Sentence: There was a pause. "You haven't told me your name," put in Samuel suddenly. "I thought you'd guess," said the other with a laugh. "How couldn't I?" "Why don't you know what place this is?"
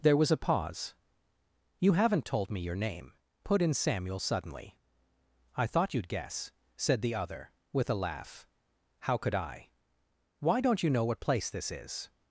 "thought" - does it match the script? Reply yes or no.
yes